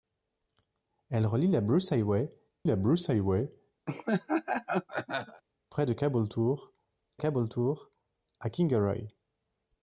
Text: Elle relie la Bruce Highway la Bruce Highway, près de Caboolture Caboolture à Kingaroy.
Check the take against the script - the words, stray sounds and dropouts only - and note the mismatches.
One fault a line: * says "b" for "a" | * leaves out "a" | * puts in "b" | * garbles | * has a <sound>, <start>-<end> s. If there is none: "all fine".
* has a laugh, 3.9-5.4 s